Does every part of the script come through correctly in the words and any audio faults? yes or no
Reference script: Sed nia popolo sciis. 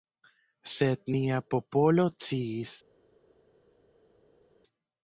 yes